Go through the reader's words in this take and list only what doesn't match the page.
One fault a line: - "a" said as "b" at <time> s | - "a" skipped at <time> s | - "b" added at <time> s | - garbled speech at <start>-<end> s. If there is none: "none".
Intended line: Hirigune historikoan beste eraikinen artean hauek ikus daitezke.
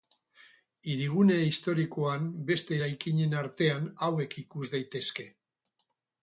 none